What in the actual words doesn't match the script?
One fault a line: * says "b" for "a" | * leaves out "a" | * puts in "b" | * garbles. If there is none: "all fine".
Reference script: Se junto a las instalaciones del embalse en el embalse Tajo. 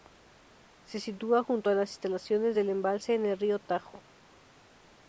* puts in "sitúa"
* says "río" for "embalse"